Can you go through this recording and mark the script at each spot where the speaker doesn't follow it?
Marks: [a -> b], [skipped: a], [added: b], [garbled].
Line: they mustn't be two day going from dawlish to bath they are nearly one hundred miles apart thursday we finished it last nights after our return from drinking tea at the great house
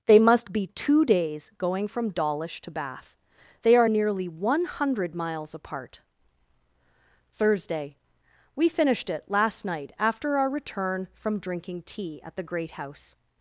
they [mustn't -> must] be two [day -> days] going from dawlish to bath they are nearly one hundred miles apart thursday we finished it last [nights -> night] after our return from drinking tea at the great house